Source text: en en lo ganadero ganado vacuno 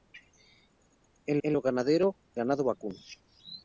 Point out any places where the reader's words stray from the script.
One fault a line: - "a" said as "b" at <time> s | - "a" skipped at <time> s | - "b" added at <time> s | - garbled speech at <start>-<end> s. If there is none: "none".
none